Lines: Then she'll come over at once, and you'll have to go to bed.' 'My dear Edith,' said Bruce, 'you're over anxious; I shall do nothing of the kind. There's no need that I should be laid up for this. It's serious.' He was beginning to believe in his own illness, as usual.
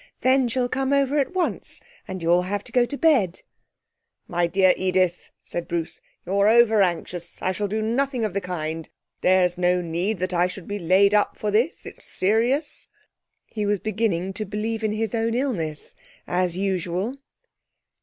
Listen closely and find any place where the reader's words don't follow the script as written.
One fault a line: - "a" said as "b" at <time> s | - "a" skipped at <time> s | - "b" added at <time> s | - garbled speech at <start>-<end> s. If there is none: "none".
none